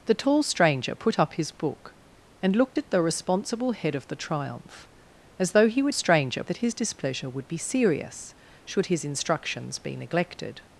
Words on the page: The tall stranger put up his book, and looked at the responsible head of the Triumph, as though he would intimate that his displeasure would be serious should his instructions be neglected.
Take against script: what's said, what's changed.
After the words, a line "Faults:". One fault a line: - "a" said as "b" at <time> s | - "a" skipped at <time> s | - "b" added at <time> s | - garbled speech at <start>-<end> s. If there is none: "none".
The tall stranger put up his book, and looked at the responsible head of the Triumph, as though he would stranger that his displeasure would be serious should his instructions be neglected.
Faults:
- "intimate" said as "stranger" at 5.9 s